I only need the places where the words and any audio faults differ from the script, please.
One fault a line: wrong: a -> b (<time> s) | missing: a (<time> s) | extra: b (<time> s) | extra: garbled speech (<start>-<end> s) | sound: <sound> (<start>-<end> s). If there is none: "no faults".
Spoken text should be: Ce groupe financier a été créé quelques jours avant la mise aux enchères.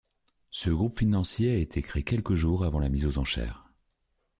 no faults